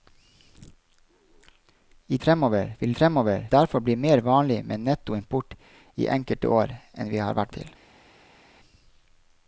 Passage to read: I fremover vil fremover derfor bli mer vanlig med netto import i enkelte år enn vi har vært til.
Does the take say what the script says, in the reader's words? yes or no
yes